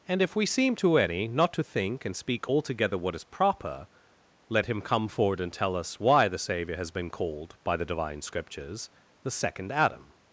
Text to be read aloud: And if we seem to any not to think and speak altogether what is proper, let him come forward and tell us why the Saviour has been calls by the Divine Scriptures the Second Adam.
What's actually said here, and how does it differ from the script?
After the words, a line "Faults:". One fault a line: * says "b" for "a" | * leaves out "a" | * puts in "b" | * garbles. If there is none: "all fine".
And if we seem to any not to think and speak altogether what is proper, let him come forward and tell us why the Saviour has been called by the Divine Scriptures the Second Adam.
Faults:
* says "called" for "calls"